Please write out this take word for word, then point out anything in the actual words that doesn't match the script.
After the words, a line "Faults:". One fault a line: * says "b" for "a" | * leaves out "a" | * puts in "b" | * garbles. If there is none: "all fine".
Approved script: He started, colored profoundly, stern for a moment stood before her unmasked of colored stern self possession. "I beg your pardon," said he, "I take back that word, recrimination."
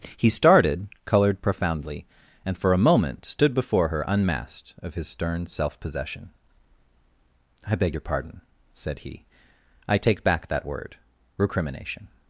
He started, colored profoundly, and for a moment stood before her unmasked of his stern self possession. "I beg your pardon," said he, "I take back that word, recrimination."
Faults:
* says "and" for "stern"
* says "his" for "colored"